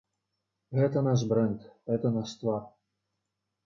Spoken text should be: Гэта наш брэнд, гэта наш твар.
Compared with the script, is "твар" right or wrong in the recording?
right